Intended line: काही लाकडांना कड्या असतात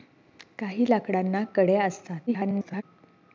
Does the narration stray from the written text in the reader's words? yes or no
yes